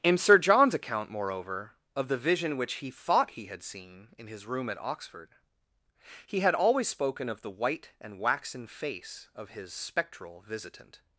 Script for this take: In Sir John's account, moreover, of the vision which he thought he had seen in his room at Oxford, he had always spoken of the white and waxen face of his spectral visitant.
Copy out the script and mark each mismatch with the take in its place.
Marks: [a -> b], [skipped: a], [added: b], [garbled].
In Sir John's account, moreover, of the vision which he thought he had seen in his room at Oxford, he had always spoken of the white and waxen face of his spectral visitant.